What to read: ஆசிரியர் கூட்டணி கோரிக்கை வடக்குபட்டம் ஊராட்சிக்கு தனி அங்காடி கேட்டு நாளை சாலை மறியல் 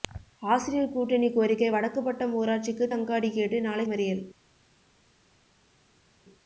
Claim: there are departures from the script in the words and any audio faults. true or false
true